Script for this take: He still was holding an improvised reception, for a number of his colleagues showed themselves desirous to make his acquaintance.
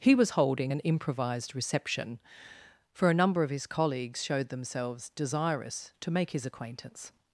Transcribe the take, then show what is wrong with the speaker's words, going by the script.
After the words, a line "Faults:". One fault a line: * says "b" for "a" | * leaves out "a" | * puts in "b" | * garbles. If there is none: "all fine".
He was holding an improvised reception, for a number of his colleagues showed themselves desirous to make his acquaintance.
Faults:
* leaves out "still"